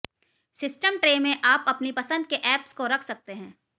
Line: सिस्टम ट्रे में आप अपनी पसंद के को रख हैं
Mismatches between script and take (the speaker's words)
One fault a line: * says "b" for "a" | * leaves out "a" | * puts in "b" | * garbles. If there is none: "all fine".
* puts in "ऐप्स"
* puts in "सकते"